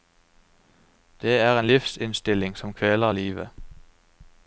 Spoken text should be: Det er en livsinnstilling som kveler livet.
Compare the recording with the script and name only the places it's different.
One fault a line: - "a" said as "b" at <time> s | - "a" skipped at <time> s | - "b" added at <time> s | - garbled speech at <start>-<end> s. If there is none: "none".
none